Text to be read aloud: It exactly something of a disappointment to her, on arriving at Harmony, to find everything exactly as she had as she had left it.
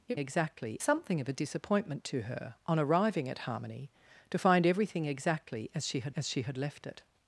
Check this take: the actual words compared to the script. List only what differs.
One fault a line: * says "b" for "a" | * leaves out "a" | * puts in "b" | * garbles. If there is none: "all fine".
all fine